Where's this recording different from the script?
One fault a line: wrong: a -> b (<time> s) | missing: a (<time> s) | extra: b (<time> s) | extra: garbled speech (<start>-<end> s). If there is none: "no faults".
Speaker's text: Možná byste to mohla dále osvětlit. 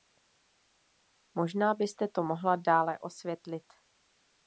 no faults